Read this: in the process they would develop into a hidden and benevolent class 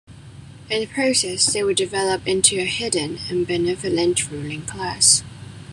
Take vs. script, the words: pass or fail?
fail